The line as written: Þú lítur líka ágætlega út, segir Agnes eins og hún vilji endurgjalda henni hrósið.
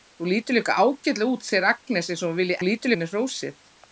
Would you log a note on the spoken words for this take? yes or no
yes